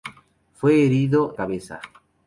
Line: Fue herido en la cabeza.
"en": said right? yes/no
no